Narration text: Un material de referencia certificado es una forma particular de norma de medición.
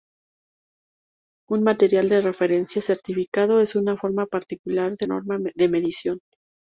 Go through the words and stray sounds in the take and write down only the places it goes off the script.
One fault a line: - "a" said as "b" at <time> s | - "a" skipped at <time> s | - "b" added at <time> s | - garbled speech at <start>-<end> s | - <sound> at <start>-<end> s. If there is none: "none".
none